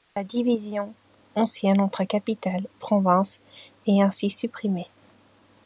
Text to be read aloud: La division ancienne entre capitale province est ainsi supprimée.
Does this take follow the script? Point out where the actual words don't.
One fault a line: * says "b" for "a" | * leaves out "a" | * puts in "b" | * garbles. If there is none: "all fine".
all fine